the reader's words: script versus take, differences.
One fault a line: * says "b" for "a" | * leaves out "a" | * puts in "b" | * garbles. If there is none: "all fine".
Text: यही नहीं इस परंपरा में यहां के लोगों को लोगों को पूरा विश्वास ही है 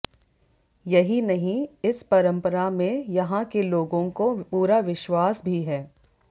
* leaves out "लोगों को"
* says "भी" for "ही"